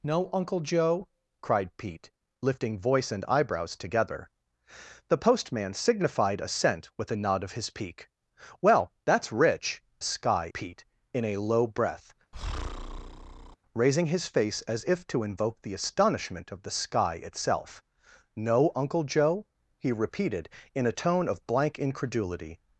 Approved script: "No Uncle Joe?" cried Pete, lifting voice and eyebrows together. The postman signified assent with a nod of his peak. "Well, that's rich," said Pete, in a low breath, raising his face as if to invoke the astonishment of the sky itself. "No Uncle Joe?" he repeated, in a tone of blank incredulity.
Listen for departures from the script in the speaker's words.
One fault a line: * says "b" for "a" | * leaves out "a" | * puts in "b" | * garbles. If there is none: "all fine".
* says "sky" for "said"